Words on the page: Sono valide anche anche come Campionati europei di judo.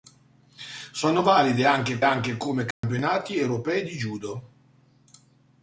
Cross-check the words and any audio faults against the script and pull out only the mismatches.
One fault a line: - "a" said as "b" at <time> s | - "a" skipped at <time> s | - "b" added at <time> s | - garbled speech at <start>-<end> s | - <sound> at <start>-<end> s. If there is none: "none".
- dropout at 2.7-2.8 s